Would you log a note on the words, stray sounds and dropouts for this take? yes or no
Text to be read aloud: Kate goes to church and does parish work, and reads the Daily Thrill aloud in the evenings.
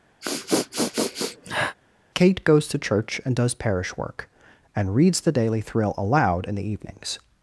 yes